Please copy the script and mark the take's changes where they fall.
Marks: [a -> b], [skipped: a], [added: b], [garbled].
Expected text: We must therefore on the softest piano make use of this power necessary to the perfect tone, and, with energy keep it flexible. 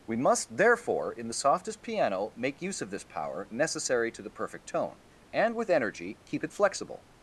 We must therefore [on -> in] the softest piano make use of this power necessary to the perfect tone, and, with energy keep it flexible.